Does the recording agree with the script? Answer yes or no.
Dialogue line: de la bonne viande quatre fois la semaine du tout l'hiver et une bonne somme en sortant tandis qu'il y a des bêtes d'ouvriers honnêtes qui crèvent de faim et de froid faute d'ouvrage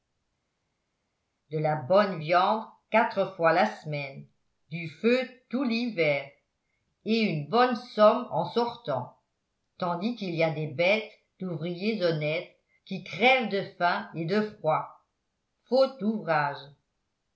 no